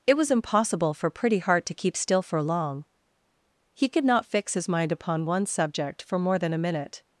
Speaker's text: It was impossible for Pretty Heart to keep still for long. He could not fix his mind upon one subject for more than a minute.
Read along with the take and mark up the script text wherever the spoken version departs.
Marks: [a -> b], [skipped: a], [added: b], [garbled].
It was impossible for Pretty Heart to keep still for long. He could not fix his mind upon one subject for more than a minute.